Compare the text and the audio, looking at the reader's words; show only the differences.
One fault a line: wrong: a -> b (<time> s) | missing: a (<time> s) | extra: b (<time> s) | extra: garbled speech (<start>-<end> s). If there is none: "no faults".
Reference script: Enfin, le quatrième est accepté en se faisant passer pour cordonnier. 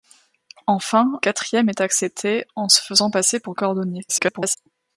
missing: le (1.2 s)
extra: garbled speech (4.1-4.6 s)